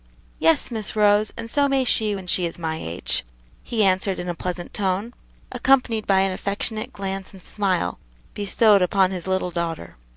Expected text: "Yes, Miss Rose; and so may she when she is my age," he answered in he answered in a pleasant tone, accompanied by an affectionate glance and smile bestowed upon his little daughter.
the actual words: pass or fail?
fail